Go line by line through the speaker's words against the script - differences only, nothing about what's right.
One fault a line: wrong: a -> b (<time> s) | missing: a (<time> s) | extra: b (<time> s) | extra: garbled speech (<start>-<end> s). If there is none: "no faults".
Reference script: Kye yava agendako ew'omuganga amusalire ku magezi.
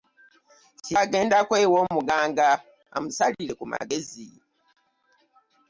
missing: yava (0.9 s)